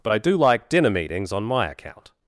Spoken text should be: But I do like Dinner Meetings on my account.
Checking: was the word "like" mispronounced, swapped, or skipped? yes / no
no